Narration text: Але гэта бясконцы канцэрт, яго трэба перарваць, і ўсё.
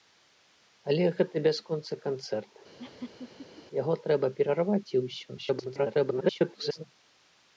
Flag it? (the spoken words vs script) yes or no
yes